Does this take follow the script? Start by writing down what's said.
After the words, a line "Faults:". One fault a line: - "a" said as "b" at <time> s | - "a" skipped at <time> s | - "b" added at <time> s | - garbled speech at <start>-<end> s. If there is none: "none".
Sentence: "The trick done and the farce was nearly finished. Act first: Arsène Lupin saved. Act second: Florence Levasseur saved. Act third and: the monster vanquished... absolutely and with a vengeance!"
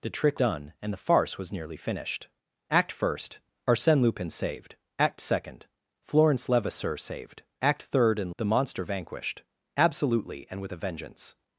"The trick done and the farce was nearly finished. Act first: Arsène Lupin saved. Act second: Florence Levasseur saved. Act third and: the monster vanquished... absolutely and with a vengeance!"
Faults:
none